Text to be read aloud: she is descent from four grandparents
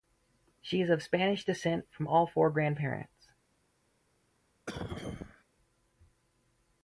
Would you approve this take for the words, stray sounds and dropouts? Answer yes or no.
no